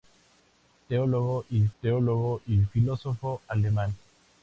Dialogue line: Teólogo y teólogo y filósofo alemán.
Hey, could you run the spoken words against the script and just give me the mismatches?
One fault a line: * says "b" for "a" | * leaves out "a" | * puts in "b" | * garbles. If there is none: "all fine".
all fine